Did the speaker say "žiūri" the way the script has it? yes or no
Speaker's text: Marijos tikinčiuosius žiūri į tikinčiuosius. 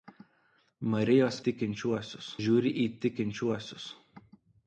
yes